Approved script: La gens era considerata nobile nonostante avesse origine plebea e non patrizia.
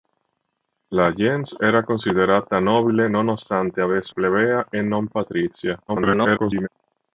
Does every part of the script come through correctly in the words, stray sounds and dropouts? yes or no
no